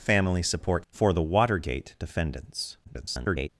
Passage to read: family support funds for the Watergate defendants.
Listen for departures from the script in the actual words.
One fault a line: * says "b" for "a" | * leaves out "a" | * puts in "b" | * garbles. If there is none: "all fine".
* leaves out "funds"
* garbles